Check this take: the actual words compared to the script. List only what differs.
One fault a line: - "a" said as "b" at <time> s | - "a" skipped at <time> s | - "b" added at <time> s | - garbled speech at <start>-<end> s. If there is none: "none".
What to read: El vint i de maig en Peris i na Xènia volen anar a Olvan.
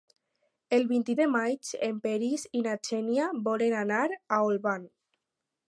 none